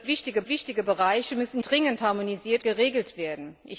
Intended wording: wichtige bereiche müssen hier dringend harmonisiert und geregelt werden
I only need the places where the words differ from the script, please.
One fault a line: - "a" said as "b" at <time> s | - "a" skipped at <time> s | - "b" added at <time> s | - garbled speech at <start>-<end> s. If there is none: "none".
- "wichtige" added at 0.4 s
- "hier" skipped at 1.6 s
- "und" skipped at 2.6 s